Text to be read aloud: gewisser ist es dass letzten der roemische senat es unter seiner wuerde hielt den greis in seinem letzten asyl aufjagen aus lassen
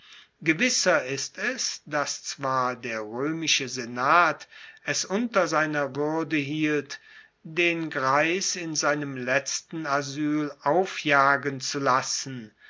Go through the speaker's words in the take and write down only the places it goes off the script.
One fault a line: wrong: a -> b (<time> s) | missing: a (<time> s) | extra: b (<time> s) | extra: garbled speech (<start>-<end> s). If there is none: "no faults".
wrong: letzten -> zwar (2.2 s)
wrong: aus -> zu (11.6 s)